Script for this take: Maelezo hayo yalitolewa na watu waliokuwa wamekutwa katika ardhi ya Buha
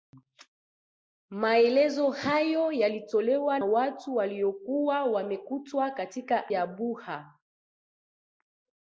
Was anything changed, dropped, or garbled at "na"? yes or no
yes